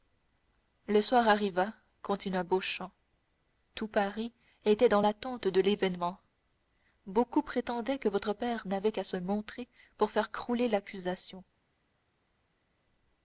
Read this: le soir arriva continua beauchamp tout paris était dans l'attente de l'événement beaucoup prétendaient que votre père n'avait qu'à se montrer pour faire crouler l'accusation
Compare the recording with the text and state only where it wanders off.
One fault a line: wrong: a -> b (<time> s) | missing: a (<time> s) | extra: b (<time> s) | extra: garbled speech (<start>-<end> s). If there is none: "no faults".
no faults